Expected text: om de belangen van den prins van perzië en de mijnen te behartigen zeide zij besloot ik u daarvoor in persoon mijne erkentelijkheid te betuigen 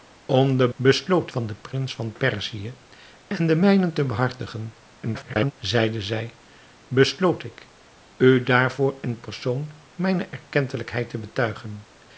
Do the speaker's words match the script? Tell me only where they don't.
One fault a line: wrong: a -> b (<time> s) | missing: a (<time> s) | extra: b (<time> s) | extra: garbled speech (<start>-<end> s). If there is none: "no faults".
wrong: belangen -> besloot (0.7 s)
extra: garbled speech (5.0-5.5 s)